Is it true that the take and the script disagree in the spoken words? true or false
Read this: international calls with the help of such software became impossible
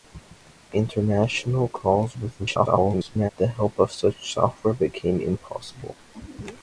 true